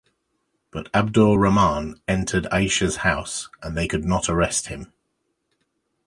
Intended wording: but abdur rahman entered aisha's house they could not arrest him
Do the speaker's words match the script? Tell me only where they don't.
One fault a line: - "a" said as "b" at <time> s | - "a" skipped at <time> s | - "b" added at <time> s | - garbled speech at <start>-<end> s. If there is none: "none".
- "and" added at 3.6 s